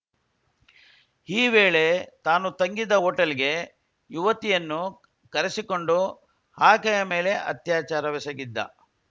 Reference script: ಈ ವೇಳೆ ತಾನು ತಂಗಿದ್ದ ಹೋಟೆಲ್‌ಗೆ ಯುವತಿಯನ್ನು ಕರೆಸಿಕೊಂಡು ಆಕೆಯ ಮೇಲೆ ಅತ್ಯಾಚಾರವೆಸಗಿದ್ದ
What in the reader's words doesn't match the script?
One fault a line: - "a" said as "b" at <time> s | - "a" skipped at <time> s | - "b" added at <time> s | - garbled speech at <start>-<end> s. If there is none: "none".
none